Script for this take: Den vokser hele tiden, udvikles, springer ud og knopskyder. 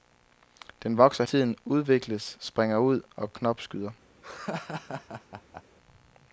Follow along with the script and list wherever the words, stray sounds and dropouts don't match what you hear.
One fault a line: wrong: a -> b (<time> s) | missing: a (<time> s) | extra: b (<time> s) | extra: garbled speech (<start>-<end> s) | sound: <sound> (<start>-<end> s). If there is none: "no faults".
missing: hele (1.2 s)
sound: laugh (4.2-5.6 s)